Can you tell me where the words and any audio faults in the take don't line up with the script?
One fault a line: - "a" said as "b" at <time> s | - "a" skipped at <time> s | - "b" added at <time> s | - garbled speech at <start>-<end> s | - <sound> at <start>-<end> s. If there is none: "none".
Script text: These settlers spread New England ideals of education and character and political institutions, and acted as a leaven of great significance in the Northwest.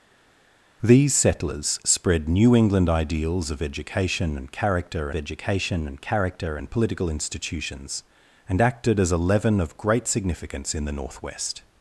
- "education and character" added at 5.1 s